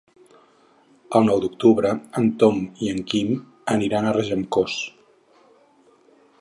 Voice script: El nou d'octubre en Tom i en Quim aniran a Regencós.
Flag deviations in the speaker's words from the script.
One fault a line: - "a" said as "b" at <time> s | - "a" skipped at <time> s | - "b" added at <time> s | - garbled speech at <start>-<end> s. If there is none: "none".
none